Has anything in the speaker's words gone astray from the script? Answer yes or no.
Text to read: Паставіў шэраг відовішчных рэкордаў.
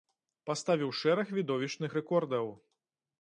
no